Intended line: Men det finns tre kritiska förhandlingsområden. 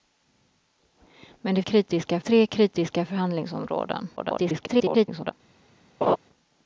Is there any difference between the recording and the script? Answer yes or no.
yes